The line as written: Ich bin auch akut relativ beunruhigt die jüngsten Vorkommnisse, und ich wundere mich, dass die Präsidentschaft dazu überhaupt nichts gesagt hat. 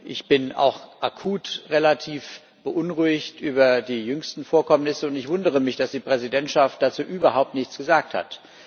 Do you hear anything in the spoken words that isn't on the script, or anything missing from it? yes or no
yes